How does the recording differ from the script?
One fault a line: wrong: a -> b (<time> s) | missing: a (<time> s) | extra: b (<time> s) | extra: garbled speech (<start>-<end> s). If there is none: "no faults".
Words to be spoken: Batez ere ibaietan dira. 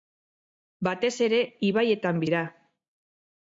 no faults